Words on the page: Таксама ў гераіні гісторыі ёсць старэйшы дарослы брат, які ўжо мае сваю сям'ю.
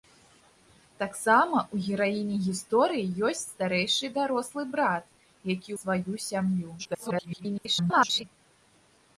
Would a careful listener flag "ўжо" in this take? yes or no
yes